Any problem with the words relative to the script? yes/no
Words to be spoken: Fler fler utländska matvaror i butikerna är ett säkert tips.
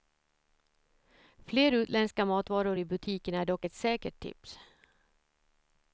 yes